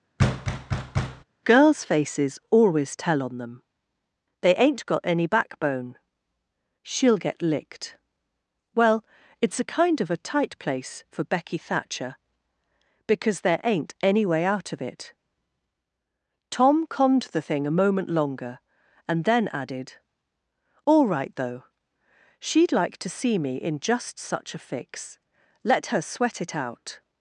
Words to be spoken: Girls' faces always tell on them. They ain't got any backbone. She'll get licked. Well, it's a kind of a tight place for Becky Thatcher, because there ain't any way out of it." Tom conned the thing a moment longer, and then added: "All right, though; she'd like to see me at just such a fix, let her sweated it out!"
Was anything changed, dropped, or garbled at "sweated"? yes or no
yes